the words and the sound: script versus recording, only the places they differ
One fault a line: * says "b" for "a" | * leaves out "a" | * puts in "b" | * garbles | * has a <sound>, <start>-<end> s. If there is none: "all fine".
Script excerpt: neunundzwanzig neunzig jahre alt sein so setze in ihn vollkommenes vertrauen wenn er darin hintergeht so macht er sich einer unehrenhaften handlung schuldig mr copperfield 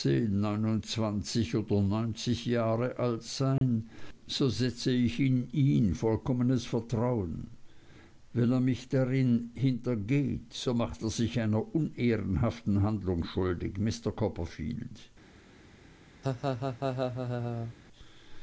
* puts in "oder"
* has a dropout, 3.6-3.6 s
* puts in "ich"
* puts in "mich"
* has a laugh, 16.2-17.7 s